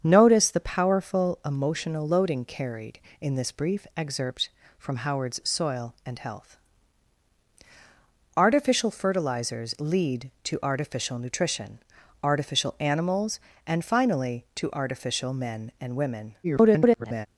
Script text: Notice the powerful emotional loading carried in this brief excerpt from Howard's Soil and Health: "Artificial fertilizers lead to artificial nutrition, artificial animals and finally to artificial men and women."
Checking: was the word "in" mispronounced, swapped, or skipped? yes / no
no